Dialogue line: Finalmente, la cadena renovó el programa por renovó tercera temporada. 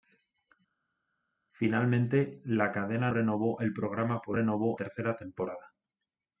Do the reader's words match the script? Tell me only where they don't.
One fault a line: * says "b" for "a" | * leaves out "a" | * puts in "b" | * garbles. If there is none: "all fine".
all fine